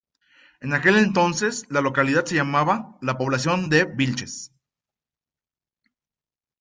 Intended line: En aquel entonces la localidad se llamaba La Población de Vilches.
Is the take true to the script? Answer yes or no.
yes